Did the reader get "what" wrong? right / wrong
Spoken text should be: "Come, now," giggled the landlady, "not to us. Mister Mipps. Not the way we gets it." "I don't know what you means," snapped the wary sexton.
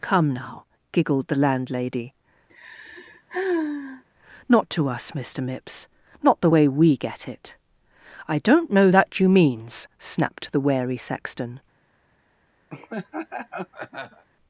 wrong